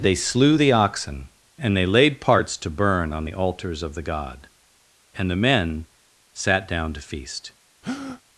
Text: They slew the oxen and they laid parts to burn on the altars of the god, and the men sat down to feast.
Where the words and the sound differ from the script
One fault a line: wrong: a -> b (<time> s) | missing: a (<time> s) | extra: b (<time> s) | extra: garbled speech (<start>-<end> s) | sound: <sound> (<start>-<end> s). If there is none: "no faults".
sound: breath (7.8-8.2 s)